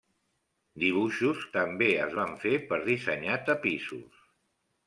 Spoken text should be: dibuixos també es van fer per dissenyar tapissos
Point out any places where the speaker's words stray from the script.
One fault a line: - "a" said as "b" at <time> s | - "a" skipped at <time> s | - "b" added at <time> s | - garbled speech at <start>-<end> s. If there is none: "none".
none